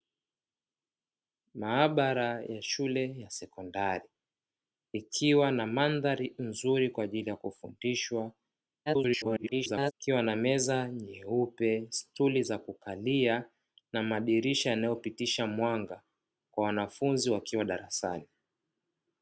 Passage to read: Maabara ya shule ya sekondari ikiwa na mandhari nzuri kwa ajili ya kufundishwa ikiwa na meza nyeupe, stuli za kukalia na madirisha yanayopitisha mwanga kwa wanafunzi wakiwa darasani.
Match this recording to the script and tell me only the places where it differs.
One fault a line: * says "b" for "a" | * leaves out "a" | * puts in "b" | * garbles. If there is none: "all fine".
* garbles